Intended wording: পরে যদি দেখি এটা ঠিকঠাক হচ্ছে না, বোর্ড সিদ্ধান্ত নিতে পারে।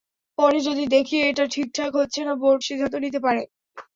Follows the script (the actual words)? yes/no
yes